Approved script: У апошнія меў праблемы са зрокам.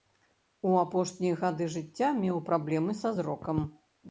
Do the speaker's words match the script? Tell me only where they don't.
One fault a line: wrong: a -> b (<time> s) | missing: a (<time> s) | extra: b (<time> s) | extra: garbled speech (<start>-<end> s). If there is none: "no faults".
extra: гады жыцця (1.4 s)